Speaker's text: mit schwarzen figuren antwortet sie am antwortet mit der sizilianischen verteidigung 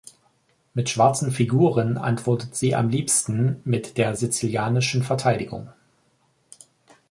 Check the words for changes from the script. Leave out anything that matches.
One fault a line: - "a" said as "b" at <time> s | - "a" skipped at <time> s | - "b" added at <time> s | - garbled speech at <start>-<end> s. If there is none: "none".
- "antwortet" said as "liebsten" at 2.9 s